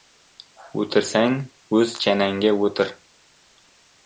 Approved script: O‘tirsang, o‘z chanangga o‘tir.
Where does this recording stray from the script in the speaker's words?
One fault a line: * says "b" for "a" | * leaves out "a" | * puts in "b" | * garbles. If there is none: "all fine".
all fine